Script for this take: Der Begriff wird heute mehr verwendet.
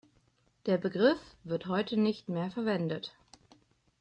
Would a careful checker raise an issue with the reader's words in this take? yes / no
yes